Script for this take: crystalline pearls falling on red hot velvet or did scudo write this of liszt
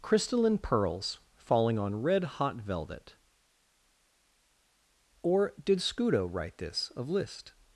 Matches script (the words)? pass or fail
pass